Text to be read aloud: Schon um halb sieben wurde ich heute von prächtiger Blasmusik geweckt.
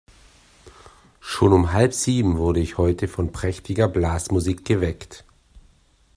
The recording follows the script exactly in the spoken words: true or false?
true